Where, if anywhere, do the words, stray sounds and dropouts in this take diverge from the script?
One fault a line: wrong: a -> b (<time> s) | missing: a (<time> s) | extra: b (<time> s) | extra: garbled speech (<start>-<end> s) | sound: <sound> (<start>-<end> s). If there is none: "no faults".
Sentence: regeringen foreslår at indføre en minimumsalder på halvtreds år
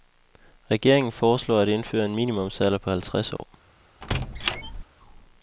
sound: dropout (3.4-3.4 s)
sound: squeak (4.0-4.8 s)